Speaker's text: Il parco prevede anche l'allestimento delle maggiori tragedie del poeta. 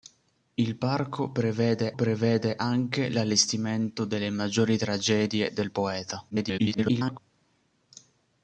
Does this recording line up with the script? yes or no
no